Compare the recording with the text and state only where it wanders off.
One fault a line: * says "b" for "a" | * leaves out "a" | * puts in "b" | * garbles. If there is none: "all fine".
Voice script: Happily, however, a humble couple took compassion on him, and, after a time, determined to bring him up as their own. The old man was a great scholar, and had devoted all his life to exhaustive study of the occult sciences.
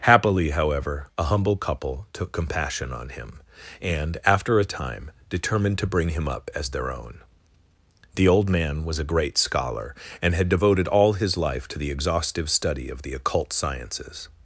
* puts in "the"